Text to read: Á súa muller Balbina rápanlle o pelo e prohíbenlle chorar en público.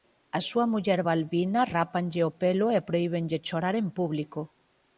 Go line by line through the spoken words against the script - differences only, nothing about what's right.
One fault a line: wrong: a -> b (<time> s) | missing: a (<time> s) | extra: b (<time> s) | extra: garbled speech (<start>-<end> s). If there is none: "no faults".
no faults